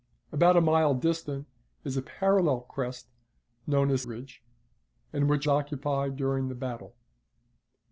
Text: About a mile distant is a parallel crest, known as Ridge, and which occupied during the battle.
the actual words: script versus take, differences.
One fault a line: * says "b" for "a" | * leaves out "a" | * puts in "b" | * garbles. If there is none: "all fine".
all fine